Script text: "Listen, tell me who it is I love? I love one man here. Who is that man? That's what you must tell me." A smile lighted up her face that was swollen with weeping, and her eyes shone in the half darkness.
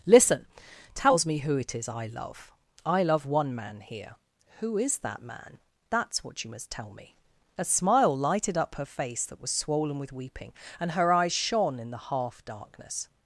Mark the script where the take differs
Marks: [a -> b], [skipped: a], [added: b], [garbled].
"Listen, [tell -> tells] me who it is I love? I love one man here. Who is that man? That's what you must tell me." A smile lighted up her face that was swollen with weeping, and her eyes shone in the half darkness.